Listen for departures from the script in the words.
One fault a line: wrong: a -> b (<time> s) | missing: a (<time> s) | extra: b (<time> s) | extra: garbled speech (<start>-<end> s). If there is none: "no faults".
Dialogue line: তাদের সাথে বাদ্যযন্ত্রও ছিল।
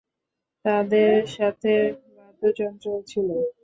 no faults